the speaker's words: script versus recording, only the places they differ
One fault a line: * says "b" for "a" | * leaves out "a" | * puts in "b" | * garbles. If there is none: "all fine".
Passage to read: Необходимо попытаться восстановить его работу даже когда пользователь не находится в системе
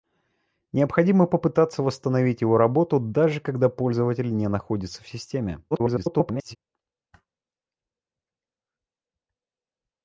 * garbles